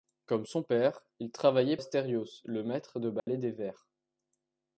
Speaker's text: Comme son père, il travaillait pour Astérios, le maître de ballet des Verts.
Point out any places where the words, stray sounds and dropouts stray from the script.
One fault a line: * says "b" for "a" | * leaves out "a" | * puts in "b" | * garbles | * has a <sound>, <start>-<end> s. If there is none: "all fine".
* leaves out "pour"
* has a dropout, 3.2-3.3 s